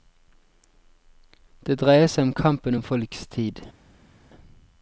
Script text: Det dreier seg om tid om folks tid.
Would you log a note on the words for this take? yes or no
yes